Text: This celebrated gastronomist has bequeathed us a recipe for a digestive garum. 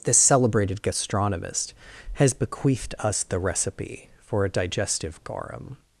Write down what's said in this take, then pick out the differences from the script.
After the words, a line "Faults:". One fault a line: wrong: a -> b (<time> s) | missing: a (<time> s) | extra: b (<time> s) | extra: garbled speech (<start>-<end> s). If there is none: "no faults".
This celebrated gastronomist has bequeathed us the recipe for a digestive garum.
Faults:
wrong: a -> the (3.2 s)